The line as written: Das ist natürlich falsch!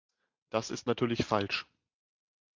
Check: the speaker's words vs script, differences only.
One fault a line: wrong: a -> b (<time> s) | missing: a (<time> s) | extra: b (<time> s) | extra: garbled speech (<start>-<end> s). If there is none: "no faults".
no faults